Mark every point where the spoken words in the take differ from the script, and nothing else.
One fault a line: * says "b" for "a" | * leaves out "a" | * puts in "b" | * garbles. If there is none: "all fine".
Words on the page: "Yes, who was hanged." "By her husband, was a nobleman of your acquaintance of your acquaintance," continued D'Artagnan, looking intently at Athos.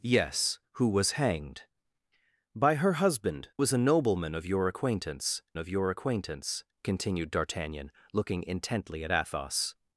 all fine